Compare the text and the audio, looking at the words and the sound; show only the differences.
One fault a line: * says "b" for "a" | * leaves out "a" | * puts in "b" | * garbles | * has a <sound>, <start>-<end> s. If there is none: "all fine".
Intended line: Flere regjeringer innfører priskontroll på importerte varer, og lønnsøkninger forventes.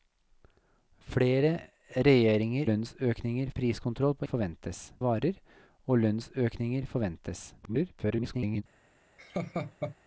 * says "lønnsøkninger" for "innfører"
* says "forventes" for "importerte"
* garbles
* has a laugh, 9.2-10.0 s